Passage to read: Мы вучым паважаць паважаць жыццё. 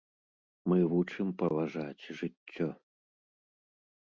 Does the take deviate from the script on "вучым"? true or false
false